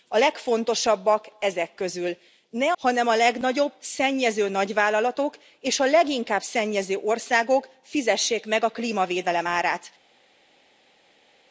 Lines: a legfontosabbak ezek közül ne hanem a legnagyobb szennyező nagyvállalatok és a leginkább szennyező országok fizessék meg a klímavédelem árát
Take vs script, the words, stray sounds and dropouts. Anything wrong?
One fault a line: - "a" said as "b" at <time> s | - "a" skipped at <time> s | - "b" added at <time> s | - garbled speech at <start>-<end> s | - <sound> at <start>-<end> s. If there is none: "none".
none